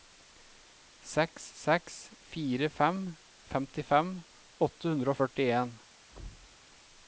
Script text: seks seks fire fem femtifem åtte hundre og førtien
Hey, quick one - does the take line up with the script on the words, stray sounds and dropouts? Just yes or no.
no